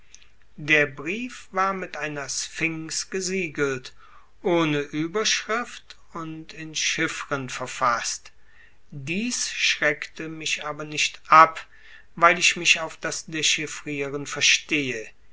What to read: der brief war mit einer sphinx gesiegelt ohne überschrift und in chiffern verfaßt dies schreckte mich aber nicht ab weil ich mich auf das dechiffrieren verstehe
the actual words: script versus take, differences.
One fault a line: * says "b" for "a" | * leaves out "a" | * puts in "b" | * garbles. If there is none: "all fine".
all fine